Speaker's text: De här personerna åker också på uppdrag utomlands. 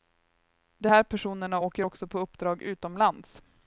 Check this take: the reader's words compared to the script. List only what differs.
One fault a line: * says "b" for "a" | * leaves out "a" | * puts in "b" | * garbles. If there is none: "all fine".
all fine